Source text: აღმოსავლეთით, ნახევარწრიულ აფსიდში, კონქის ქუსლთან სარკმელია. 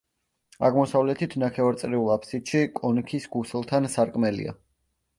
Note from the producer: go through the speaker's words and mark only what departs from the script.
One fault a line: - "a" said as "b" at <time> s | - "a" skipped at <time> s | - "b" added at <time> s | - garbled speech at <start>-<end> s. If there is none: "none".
none